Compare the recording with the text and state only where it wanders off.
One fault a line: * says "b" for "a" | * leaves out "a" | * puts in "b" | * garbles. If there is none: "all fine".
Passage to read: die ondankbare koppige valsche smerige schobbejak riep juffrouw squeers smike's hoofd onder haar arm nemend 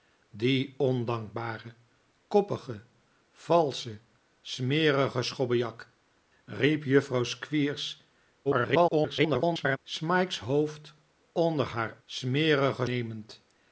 * garbles
* says "smerige" for "arm"